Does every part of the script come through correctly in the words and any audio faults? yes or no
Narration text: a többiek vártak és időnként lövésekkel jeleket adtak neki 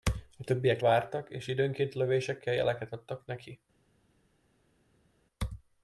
yes